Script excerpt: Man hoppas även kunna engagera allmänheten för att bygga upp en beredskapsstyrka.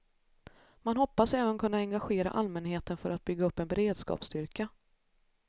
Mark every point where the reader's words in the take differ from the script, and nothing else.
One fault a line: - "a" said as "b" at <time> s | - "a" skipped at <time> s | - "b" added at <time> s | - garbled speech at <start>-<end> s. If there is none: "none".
none